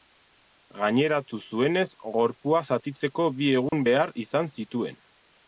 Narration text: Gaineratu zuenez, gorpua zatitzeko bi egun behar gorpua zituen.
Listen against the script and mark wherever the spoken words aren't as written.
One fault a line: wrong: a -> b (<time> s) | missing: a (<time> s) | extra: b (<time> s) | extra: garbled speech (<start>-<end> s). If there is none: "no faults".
wrong: gorpua -> izan (4.3 s)